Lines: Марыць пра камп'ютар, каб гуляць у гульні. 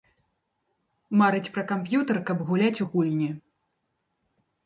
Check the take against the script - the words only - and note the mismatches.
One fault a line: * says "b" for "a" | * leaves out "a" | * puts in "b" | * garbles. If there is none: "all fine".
all fine